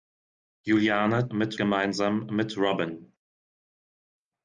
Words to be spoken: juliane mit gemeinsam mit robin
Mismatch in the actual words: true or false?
false